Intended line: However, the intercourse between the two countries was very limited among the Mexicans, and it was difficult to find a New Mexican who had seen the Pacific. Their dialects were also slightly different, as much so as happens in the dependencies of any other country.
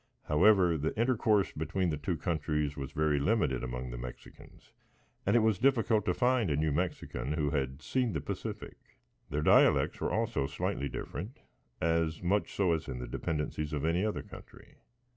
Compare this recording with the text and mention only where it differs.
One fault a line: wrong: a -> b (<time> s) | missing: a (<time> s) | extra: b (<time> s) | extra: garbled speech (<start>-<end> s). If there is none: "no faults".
missing: happens (12.9 s)